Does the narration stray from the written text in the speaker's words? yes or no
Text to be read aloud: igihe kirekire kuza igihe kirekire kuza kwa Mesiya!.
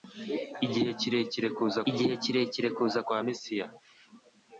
no